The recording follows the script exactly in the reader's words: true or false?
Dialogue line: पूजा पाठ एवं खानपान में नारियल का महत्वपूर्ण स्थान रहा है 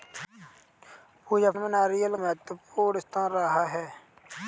false